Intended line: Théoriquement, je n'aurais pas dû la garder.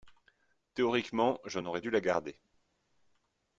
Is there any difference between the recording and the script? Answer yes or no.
yes